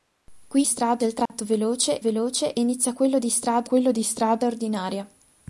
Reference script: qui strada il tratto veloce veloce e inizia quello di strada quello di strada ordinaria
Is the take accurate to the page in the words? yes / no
yes